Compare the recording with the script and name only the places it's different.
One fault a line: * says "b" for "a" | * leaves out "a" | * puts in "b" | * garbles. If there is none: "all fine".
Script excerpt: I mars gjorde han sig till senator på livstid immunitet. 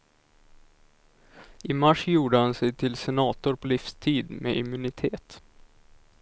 * puts in "med"